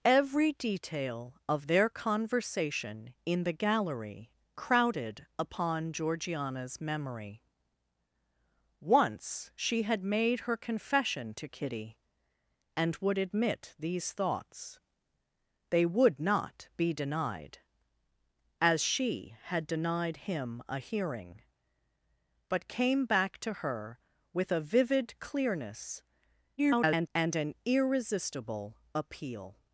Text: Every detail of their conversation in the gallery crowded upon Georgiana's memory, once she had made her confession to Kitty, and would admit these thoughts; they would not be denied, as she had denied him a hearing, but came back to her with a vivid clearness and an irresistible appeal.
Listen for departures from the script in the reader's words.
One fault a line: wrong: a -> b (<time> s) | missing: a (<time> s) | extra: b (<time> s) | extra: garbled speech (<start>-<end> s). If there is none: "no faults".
extra: garbled speech (26.6-27.1 s)